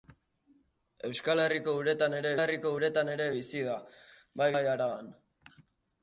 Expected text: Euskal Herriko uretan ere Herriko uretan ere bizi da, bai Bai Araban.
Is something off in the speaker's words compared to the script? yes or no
no